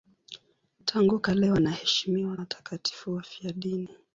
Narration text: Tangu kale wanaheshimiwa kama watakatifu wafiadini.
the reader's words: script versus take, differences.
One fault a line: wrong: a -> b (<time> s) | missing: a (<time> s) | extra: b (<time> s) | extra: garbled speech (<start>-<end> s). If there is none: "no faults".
missing: kama (2.4 s)